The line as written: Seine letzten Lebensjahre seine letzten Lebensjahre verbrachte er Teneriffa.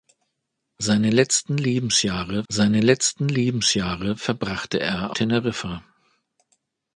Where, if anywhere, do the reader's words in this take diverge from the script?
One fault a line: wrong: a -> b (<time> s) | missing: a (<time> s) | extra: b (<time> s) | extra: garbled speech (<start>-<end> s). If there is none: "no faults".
no faults